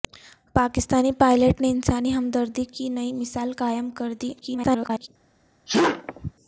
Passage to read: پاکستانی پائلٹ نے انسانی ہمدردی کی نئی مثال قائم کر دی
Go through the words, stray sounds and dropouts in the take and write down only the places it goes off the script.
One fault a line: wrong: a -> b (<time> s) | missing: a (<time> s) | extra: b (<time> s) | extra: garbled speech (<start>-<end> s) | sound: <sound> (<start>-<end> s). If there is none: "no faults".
extra: garbled speech (4.4-5.1 s)
sound: sneeze (5.7-6.3 s)